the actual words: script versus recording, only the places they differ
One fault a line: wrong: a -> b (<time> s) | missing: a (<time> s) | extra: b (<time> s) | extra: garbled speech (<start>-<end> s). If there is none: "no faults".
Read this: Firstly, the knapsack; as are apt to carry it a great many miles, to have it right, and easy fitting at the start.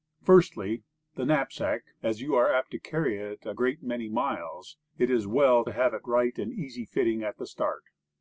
extra: you (2.2 s)
extra: it is well (5.0 s)